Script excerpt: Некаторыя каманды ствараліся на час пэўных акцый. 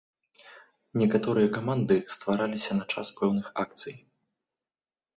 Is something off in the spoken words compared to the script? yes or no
no